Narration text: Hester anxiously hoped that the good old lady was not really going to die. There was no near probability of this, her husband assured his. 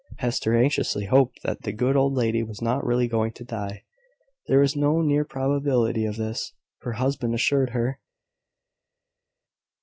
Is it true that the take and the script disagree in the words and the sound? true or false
true